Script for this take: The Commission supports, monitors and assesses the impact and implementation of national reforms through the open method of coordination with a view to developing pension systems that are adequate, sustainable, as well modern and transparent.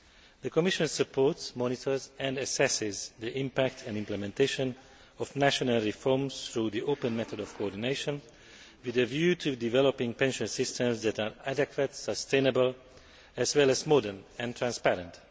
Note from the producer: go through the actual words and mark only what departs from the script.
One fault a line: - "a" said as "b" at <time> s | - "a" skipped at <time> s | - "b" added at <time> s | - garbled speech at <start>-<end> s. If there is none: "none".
- "as" added at 13.7 s